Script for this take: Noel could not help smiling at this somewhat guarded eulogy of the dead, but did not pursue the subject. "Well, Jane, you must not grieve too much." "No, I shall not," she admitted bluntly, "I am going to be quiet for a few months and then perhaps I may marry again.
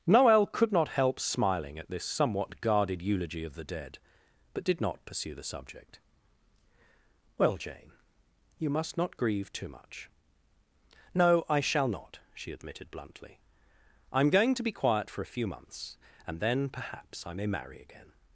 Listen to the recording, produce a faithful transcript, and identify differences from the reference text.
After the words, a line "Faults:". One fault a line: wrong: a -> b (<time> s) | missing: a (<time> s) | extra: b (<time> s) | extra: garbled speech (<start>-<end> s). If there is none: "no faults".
Noel could not help smiling at this somewhat guarded eulogy of the dead, but did not pursue the subject. "Well, Jane, you must not grieve too much." "No, I shall not," she admitted bluntly, "I am going to be quiet for a few months and then perhaps I may marry again.
Faults:
no faults